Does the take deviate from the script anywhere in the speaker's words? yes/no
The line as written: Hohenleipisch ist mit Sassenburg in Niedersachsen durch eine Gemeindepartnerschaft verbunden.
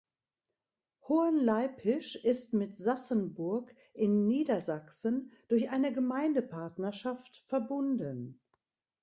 no